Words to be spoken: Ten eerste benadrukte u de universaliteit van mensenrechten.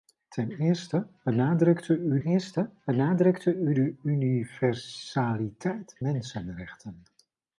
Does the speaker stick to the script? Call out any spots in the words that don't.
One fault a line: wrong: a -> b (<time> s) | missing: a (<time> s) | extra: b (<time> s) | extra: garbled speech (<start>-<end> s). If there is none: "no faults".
extra: eerste benadrukte u (2.2 s)
missing: van (6.0 s)